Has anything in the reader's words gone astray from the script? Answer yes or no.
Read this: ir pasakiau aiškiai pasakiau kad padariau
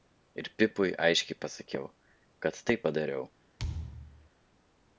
yes